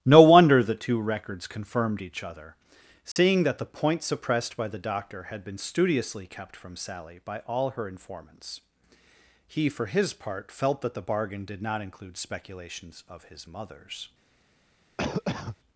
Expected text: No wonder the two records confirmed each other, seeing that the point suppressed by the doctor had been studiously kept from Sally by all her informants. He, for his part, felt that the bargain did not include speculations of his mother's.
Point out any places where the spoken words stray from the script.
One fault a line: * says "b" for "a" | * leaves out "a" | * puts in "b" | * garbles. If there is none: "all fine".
all fine